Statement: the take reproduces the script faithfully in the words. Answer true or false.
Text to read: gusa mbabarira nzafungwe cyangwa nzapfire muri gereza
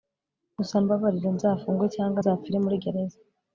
true